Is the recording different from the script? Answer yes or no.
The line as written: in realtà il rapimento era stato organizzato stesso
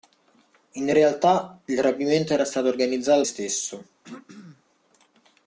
no